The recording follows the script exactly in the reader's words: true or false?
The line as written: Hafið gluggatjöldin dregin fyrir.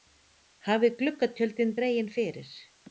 true